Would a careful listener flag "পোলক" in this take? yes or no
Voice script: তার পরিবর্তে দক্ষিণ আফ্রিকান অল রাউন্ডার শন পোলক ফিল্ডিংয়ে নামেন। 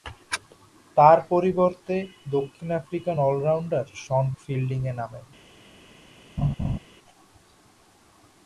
yes